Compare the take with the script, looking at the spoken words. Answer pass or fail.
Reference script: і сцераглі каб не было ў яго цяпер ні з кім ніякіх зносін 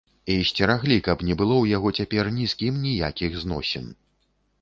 pass